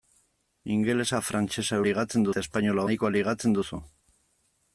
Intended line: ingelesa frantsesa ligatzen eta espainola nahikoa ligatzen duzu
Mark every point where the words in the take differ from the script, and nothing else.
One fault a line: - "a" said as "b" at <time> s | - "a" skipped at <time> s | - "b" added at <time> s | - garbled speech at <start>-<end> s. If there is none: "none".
none